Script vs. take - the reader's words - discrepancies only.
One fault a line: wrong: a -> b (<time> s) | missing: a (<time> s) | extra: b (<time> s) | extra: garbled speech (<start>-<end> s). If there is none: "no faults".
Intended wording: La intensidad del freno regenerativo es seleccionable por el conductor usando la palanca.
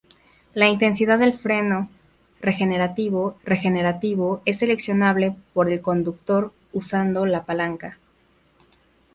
extra: regenerativo (3.4 s)